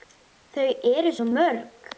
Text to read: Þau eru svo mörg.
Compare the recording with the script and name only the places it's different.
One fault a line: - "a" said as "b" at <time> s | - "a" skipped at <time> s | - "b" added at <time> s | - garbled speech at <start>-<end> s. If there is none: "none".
none